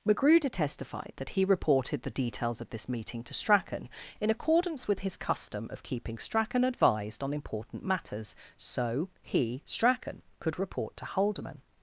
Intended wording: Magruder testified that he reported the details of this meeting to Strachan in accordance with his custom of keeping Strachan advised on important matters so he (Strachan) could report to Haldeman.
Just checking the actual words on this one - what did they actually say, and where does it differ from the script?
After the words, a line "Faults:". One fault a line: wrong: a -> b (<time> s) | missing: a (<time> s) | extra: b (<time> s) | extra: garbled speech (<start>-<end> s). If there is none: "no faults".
Magruder testified that he reported the details of this meeting to Strachan in accordance with his custom of keeping Strachan advised on important matters so he (Strachan) could report to Haldeman.
Faults:
no faults